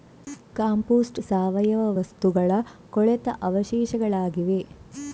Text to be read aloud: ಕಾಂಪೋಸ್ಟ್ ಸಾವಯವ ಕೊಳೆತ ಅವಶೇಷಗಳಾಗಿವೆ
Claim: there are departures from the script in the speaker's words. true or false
true